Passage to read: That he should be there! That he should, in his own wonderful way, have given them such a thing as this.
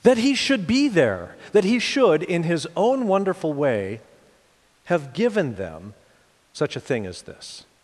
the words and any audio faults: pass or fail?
pass